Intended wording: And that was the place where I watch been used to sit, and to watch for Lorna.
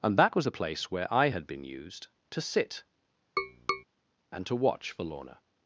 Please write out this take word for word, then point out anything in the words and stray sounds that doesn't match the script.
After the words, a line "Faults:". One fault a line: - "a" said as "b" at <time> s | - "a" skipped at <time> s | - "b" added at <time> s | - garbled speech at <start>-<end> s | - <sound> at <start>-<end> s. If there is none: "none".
And that was the place where I had been used to sit, and to watch for Lorna.
Faults:
- "watch" said as "had" at 1.3 s
- tap at 3.4-3.8 s